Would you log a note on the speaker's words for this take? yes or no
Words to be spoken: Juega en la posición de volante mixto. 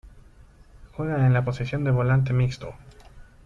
no